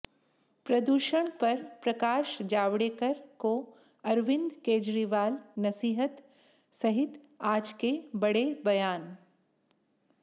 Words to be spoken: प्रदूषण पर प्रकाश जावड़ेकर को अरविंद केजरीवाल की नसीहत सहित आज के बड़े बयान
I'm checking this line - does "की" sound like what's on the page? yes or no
no